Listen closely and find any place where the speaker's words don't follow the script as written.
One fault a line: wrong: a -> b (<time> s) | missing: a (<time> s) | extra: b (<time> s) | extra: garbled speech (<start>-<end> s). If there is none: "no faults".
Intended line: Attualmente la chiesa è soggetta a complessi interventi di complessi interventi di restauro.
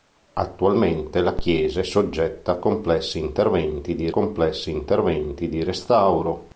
no faults